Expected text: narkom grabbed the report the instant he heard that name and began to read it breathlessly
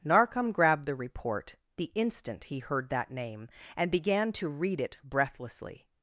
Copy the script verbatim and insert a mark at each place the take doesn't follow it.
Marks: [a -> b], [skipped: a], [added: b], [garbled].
narkom grabbed the report the instant he heard that name and began to read it breathlessly